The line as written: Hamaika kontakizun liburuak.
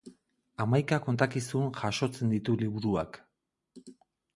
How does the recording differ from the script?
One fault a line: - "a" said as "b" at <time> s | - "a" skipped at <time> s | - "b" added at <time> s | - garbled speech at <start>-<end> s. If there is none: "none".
- "jasotzen ditu" added at 1.8 s